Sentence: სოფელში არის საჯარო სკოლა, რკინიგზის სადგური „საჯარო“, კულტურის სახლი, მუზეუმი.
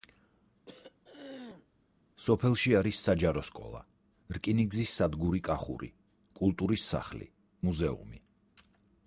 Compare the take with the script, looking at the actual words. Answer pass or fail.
fail